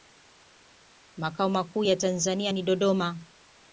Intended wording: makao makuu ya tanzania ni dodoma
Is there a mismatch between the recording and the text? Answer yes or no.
no